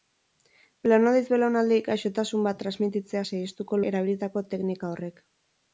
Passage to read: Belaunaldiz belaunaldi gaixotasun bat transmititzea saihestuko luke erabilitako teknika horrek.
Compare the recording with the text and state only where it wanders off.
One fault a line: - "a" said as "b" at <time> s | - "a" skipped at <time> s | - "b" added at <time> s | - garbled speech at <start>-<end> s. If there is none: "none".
- "luke" skipped at 3.8 s